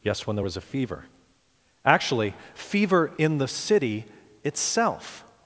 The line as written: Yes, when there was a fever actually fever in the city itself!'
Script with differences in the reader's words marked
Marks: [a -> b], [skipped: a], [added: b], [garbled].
Yes, when there was a fever actually fever in the city itself!'